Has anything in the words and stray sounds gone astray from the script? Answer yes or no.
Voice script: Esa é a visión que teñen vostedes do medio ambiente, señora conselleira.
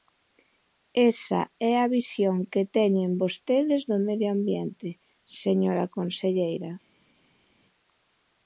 no